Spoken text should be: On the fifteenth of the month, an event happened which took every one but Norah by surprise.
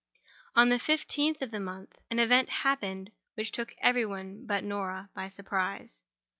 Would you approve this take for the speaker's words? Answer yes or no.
yes